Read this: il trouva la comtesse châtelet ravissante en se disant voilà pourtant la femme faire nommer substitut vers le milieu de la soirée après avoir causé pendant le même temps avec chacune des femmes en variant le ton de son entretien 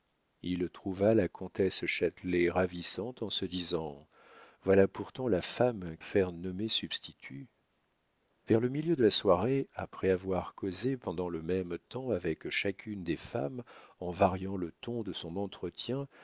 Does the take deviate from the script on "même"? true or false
false